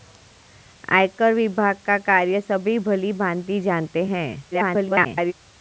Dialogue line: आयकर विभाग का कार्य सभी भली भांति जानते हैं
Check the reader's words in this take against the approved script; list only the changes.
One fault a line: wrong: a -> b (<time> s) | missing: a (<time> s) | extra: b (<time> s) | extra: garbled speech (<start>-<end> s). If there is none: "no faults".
extra: garbled speech (4.5-5.3 s)